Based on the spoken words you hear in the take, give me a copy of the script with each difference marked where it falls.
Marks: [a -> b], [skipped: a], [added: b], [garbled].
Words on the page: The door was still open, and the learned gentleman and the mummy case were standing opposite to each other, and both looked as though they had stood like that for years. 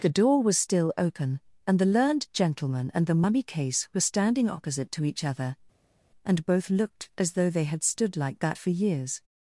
The door was still open, and the learned gentleman and the mummy case were standing opposite to each other, and both looked as though they had stood like that for years.